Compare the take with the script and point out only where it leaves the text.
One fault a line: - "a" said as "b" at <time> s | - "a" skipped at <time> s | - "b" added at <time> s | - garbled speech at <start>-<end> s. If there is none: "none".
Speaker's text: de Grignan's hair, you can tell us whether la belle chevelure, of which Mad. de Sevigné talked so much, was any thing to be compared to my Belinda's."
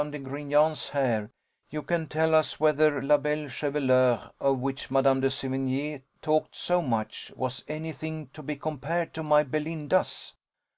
none